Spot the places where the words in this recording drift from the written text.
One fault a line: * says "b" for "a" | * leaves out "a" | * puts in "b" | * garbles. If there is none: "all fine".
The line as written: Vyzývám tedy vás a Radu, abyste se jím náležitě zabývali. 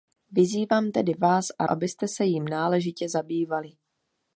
* leaves out "Radu"